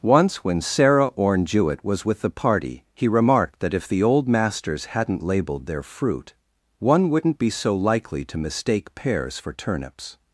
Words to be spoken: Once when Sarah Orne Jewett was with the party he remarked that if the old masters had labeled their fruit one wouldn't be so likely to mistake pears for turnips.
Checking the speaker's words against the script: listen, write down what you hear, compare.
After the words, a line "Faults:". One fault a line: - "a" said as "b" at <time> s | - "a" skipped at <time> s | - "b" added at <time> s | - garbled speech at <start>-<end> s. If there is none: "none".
Once when Sarah Orne Jewett was with the party he remarked that if the old masters hadn't labeled their fruit one wouldn't be so likely to mistake pears for turnips.
Faults:
- "had" said as "hadn't" at 4.8 s